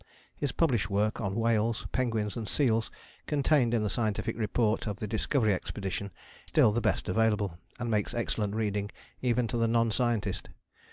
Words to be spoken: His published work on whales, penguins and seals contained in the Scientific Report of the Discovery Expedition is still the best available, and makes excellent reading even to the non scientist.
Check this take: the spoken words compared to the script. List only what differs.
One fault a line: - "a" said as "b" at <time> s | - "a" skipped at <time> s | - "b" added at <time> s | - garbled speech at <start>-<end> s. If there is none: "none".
- "is" skipped at 6.1 s